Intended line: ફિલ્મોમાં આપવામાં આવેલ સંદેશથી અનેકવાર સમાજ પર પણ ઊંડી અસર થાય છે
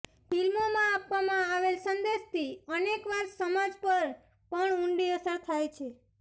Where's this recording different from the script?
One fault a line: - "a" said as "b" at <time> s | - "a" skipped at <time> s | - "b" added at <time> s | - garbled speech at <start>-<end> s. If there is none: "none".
none